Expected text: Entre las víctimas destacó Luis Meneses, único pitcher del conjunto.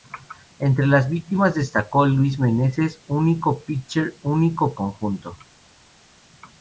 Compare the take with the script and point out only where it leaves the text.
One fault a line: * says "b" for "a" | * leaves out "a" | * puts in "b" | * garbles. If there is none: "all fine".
* says "único" for "del"